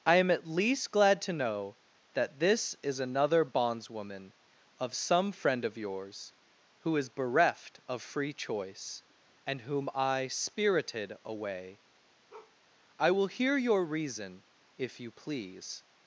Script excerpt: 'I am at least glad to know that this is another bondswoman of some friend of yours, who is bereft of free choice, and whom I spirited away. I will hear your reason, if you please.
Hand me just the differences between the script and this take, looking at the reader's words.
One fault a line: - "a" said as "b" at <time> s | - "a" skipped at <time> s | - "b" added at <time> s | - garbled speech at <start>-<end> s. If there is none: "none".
none